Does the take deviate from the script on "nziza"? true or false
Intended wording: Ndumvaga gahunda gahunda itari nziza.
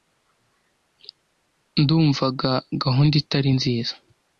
false